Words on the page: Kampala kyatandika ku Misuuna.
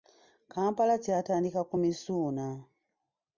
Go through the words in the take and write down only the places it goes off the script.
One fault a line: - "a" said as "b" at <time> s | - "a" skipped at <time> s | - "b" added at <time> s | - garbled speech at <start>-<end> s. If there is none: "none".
none